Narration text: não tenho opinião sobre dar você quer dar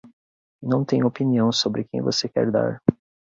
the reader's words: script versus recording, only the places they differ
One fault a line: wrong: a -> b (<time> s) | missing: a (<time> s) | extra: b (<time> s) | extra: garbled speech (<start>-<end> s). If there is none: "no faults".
wrong: dar -> quem (1.8 s)